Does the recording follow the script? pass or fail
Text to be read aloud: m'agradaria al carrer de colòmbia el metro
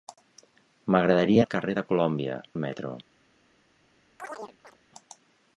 pass